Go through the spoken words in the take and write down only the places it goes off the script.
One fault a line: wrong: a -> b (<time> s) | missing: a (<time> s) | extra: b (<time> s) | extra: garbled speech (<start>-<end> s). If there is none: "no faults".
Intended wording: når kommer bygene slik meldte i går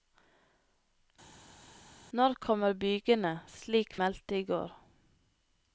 no faults